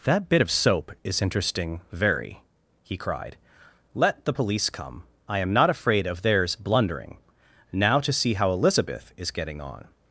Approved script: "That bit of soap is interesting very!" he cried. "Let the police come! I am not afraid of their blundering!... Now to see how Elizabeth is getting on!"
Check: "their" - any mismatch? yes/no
yes